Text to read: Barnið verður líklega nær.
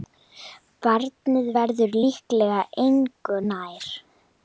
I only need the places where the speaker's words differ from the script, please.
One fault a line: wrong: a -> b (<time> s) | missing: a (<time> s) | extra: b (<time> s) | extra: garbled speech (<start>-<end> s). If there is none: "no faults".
extra: engu (2.9 s)